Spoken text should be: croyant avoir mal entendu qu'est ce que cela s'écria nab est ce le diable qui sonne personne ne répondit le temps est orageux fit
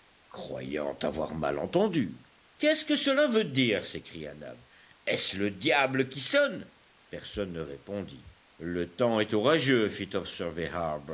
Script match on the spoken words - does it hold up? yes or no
no